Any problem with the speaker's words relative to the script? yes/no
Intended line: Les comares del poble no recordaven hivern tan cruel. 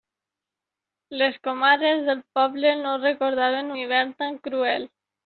no